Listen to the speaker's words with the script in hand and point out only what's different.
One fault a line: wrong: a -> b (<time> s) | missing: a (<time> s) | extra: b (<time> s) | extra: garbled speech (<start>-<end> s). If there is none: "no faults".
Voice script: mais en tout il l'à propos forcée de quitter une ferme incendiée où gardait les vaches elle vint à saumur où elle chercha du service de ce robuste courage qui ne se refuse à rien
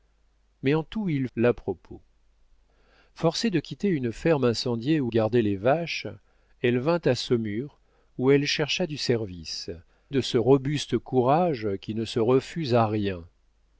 no faults